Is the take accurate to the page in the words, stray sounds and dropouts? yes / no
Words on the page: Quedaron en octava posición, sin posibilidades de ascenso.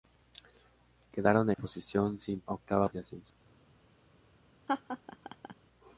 no